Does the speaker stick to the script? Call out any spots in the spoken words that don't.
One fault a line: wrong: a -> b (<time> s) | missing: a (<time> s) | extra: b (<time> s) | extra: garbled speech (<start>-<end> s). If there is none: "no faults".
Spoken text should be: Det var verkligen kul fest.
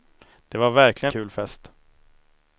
no faults